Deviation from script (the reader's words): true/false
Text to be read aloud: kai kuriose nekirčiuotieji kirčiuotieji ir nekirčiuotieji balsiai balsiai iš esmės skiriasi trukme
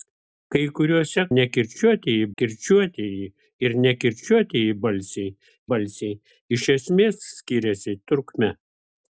false